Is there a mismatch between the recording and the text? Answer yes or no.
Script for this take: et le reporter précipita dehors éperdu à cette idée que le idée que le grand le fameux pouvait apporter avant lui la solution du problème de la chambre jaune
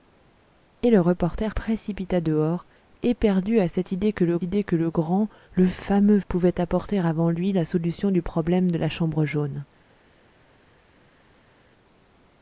no